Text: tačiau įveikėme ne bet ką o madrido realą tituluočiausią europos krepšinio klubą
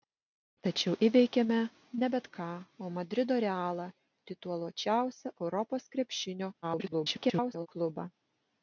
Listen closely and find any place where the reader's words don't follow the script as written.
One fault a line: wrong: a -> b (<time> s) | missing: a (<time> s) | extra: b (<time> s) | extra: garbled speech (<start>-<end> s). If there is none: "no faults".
extra: garbled speech (6.6-7.7 s)